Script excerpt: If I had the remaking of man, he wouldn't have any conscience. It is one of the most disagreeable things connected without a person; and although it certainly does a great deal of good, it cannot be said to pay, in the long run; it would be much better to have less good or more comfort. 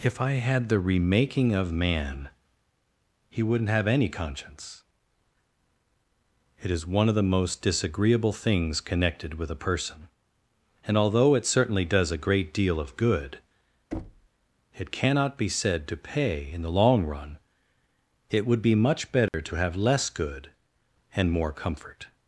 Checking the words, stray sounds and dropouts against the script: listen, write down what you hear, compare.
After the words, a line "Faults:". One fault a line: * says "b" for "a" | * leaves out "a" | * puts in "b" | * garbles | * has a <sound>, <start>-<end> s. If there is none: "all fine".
If I had the remaking of man, he wouldn't have any conscience. It is one of the most disagreeable things connected with a person; and although it certainly does a great deal of good, it cannot be said to pay, in the long run; it would be much better to have less good and more comfort.
Faults:
* says "with" for "without"
* has a thud, 13.9-14.3 s
* has a dropout, 19.3-19.3 s
* says "and" for "or"